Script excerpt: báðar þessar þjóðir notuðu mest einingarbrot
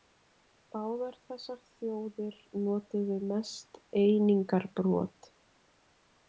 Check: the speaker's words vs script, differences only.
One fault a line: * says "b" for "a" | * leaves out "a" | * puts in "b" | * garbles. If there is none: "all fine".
all fine